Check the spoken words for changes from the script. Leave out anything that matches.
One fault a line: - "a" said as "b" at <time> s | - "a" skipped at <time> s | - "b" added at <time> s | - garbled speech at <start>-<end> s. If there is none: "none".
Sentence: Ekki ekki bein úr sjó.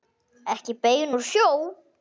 - "ekki" skipped at 0.7 s